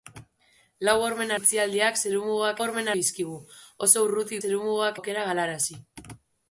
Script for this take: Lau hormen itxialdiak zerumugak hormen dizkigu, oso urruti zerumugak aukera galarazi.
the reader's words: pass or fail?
pass